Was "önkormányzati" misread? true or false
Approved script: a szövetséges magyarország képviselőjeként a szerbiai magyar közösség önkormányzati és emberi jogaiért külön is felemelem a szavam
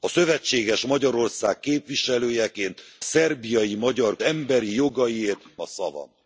true